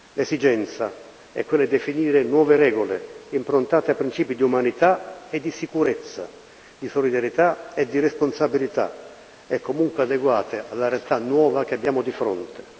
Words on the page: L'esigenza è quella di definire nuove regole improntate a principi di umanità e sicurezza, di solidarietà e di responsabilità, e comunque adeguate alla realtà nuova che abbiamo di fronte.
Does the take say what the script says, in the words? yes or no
no